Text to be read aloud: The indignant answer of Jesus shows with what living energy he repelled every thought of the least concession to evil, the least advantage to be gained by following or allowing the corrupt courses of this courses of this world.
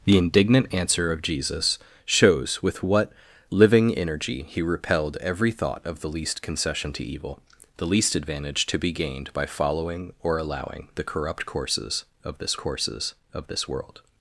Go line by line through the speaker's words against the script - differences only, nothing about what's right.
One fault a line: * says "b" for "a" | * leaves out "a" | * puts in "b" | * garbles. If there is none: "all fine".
all fine